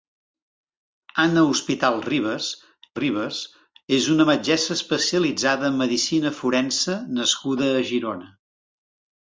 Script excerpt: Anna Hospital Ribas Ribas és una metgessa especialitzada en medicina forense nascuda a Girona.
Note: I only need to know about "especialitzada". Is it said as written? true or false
true